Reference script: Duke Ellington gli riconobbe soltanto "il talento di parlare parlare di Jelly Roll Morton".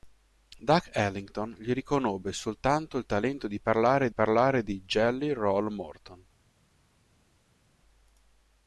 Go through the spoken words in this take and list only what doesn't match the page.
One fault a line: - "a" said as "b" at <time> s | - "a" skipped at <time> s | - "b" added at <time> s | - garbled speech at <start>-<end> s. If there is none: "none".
none